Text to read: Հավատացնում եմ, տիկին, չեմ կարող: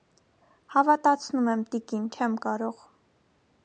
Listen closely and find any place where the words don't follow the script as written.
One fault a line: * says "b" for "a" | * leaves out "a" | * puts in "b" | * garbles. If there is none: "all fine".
all fine